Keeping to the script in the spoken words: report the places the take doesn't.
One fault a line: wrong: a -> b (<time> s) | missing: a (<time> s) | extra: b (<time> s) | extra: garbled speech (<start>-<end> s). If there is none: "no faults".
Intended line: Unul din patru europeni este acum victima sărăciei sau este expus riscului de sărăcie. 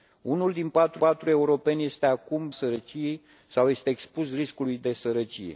extra: patru (0.9 s)
missing: victima (2.5 s)